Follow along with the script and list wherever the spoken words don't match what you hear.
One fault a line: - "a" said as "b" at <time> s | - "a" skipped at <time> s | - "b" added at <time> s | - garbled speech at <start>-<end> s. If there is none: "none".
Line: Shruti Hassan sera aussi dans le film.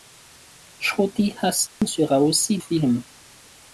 - "dans le" skipped at 2.6 s